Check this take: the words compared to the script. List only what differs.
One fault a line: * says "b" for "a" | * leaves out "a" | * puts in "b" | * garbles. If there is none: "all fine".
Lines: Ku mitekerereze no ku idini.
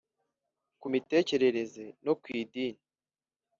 all fine